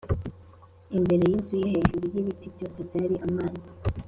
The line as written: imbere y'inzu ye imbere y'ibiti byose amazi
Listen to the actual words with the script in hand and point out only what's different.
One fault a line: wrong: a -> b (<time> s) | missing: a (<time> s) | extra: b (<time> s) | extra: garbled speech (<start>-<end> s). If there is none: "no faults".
wrong: imbere -> hejuru (1.7 s)
extra: byari (2.9 s)